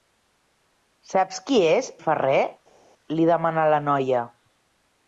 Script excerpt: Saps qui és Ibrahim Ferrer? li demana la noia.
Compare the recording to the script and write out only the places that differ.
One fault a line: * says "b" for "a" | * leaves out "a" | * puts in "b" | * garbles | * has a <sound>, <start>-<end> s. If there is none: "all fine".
* leaves out "Ibrahim"